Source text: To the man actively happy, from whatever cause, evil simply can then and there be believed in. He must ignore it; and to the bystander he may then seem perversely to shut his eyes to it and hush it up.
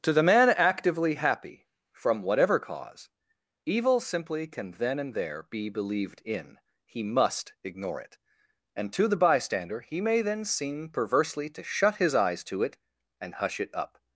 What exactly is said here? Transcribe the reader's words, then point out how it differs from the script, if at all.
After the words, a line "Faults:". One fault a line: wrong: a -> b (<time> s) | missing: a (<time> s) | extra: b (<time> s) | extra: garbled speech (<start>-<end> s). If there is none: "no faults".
To the man actively happy, from whatever cause, evil simply can then and there be believed in. He must ignore it; and to the bystander he may then seem perversely to shut his eyes to it and hush it up.
Faults:
no faults